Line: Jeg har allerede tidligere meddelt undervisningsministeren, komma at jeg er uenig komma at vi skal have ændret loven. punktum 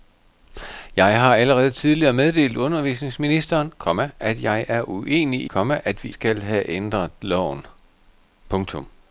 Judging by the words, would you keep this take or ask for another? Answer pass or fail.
pass